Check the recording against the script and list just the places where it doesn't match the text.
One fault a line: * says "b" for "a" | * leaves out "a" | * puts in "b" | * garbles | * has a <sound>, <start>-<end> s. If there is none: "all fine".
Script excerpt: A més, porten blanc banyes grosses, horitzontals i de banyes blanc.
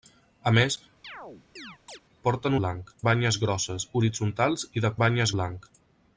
* has a chirp, 1.0-2.0 s